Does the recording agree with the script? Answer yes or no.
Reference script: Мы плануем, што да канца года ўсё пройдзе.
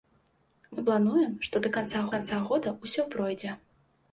no